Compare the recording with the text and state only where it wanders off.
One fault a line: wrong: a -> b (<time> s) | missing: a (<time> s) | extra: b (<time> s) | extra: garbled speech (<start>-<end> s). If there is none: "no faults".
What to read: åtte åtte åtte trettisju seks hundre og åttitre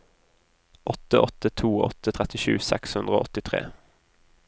extra: to (1.5 s)